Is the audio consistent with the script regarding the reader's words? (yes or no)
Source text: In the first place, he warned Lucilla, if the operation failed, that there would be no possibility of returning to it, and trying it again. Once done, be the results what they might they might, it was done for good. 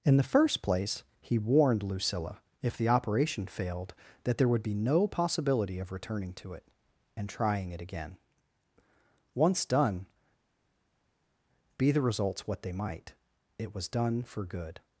no